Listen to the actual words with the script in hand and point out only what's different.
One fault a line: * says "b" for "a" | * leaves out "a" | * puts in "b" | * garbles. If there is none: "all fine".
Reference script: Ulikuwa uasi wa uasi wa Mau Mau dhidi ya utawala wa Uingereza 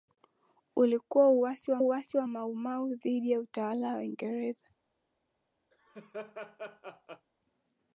all fine